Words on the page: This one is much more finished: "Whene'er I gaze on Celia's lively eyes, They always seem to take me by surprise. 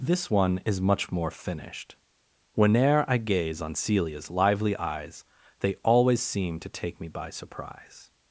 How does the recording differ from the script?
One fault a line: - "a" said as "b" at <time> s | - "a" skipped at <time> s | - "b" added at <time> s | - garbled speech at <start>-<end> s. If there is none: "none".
none